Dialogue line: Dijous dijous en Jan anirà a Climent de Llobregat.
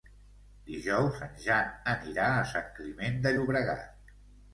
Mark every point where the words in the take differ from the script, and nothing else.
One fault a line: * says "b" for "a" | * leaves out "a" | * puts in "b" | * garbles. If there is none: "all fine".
* leaves out "dijous"
* puts in "Sant"